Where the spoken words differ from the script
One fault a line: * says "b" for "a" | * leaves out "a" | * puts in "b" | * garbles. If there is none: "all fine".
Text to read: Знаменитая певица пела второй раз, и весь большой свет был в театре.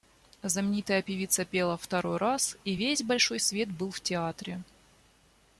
all fine